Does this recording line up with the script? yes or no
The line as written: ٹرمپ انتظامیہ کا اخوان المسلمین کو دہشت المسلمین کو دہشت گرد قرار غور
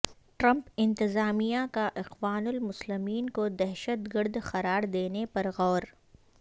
no